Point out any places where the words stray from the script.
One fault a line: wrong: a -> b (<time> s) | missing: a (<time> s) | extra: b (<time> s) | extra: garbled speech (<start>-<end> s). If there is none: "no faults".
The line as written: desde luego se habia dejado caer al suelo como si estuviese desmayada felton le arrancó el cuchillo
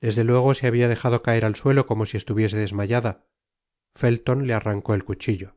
no faults